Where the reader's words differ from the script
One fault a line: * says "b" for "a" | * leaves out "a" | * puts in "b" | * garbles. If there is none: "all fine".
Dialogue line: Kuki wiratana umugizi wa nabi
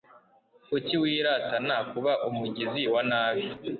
* puts in "kuba"